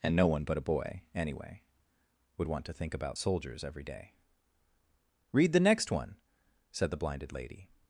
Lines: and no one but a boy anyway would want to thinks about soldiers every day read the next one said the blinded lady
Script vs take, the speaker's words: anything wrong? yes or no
yes